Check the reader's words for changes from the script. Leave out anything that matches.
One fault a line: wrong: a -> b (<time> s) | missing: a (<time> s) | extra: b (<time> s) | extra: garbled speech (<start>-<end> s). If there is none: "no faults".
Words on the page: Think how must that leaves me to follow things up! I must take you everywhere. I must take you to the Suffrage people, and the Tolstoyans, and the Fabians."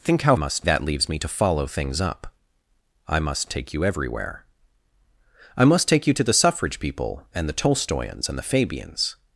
no faults